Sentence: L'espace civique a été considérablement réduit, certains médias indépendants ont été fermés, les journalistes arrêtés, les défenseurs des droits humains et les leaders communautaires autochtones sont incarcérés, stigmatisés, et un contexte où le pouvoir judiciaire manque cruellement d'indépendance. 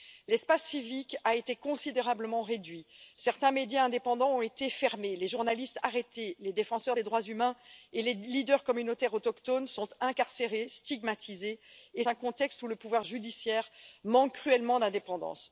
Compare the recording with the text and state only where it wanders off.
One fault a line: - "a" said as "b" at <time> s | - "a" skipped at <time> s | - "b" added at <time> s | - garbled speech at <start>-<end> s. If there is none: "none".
none